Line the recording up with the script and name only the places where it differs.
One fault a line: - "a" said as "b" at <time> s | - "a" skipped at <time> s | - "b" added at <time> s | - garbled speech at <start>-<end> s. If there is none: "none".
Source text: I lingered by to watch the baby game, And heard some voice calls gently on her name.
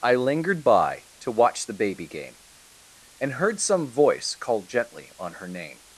- "calls" said as "call" at 4.4 s